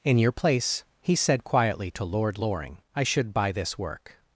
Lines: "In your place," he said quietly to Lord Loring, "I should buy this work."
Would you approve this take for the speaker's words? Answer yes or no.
yes